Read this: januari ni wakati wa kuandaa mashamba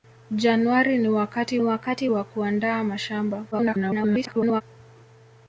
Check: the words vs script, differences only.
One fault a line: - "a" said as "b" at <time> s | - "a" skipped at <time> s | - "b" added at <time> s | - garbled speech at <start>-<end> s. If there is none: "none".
- "wakati" added at 1.6 s
- garbled speech at 3.5-4.6 s